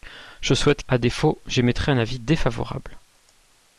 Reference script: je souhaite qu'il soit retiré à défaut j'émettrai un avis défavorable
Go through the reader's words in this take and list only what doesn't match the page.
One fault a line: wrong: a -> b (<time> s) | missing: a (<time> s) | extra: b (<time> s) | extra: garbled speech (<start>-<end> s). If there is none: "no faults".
missing: qu'il soit retiré (0.8 s)